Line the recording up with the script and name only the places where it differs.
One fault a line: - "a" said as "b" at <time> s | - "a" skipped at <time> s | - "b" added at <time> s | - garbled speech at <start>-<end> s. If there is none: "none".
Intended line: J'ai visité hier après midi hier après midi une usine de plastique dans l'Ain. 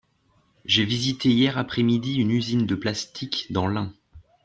- "hier après midi" skipped at 2.1 s